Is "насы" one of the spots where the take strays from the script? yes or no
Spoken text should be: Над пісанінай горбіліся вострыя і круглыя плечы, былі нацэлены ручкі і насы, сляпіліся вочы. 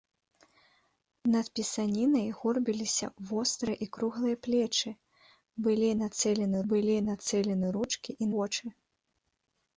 yes